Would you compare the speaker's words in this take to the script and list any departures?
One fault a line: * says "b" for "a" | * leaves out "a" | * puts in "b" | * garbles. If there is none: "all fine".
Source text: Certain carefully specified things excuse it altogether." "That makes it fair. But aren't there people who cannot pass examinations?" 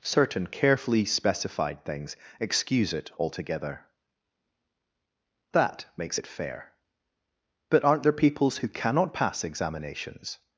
* says "peoples" for "people"